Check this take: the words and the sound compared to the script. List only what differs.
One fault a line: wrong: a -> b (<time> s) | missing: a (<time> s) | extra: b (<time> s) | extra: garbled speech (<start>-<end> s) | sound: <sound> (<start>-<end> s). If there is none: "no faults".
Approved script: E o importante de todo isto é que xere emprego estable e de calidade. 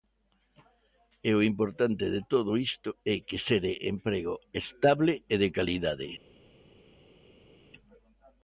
no faults